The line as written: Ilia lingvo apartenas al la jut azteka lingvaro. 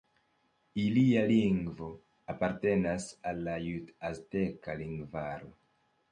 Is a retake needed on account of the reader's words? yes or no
no